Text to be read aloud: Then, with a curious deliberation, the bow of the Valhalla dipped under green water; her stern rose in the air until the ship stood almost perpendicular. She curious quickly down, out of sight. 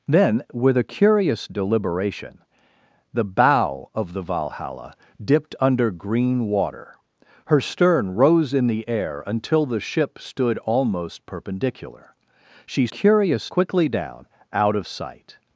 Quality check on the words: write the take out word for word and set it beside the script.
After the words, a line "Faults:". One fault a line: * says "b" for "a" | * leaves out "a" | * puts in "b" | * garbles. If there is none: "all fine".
Then, with a curious deliberation, the bow of the Valhalla dipped under green water; her stern rose in the air until the ship stood almost perpendicular. She curious quickly down, out of sight.
Faults:
all fine